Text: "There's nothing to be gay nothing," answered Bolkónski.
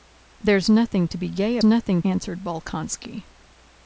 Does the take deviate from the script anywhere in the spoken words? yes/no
no